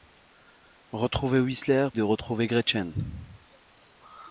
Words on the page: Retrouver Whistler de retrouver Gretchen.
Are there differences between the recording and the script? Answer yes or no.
no